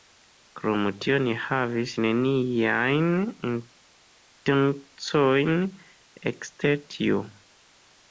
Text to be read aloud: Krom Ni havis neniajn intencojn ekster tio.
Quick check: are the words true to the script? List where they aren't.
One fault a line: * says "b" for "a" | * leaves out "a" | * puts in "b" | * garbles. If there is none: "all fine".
* puts in "tio"